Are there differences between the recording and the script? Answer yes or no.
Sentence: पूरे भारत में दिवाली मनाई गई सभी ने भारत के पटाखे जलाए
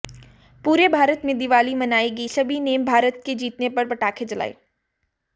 yes